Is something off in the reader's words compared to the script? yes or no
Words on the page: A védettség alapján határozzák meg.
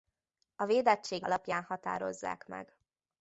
no